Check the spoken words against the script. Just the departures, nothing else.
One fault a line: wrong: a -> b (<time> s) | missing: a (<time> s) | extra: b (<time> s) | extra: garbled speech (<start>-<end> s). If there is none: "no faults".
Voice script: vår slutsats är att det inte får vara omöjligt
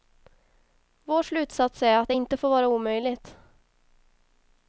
no faults